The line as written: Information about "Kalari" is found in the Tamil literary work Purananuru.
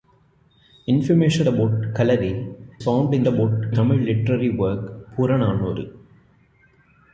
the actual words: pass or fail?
fail